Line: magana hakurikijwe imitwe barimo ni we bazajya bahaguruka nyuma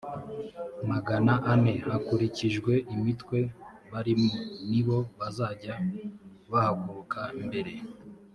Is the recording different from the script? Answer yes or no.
yes